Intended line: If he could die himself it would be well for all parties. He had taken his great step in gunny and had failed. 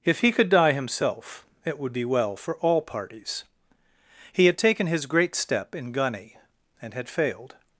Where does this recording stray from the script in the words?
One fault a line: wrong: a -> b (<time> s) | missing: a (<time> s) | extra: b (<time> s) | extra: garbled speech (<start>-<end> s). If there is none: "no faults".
no faults